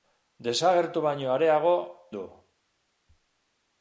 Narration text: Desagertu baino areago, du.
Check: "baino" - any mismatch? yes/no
no